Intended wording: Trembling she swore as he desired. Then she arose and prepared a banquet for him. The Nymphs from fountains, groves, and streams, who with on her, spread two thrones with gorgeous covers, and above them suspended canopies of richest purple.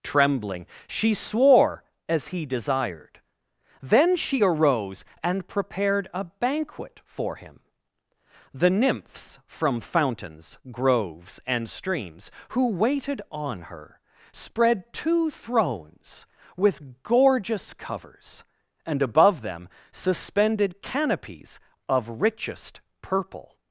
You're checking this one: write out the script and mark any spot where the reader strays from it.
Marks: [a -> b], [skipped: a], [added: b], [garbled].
Trembling she swore as he desired. Then she arose and prepared a banquet for him. The Nymphs from fountains, groves, and streams, who [with -> waited] on her, spread two thrones with gorgeous covers, and above them suspended canopies of richest purple.